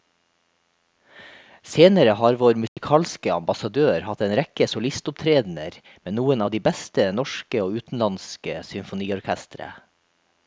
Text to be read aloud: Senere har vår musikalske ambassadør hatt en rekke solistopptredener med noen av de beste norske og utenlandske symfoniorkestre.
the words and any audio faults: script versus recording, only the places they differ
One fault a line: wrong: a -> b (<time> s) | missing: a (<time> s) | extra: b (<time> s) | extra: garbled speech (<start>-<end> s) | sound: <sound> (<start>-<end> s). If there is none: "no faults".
sound: dropout (2.7-2.8 s)